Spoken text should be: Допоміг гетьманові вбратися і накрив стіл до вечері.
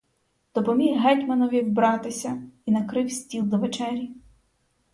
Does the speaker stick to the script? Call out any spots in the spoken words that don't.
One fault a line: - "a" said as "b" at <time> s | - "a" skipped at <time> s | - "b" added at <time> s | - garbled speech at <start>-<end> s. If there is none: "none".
none